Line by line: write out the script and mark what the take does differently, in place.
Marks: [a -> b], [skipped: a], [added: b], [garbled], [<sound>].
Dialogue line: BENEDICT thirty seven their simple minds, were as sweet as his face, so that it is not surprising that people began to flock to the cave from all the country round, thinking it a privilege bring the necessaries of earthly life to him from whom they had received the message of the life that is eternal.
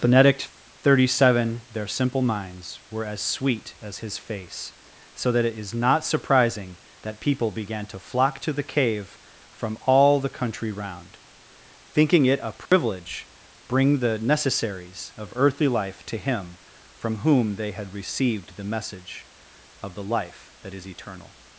BENEDICT thirty seven their simple minds, were as sweet as his face, so that it is not surprising that people began to flock to the cave from all the country round, thinking it a privilege [dropout] bring the necessaries of earthly life to him from whom they had received the message of the life that is eternal.